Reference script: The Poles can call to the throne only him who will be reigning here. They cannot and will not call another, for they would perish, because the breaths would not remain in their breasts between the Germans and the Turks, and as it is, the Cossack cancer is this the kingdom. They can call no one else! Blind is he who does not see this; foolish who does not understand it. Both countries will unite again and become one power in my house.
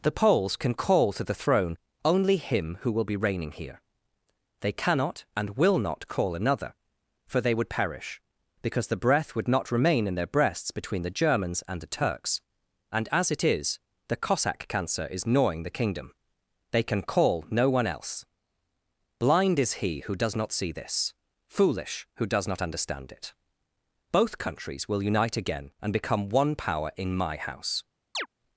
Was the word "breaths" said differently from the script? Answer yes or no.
yes